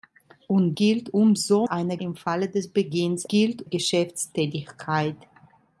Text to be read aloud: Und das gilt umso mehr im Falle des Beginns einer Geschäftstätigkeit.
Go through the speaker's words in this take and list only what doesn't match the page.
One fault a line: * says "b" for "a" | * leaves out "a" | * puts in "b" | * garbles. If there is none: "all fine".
* leaves out "das"
* says "einer" for "mehr"
* says "gilt" for "einer"